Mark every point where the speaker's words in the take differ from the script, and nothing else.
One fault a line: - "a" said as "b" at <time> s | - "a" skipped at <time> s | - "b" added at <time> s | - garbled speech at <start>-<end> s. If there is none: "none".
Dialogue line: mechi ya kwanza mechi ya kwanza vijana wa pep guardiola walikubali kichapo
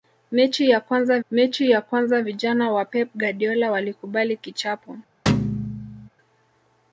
none